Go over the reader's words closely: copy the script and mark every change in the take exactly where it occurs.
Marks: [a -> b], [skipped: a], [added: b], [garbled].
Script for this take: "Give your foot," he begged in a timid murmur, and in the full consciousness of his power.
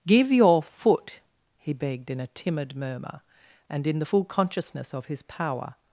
"Give your foot," he begged in a timid murmur, and in the full consciousness of his power.